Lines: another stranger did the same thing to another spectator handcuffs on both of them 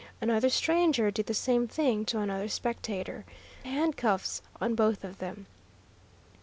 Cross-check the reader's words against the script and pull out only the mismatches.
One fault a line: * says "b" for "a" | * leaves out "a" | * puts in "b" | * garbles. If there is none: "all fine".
all fine